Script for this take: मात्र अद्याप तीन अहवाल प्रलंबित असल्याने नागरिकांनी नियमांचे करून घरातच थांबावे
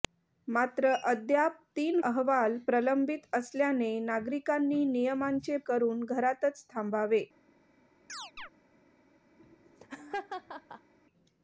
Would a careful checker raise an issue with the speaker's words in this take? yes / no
no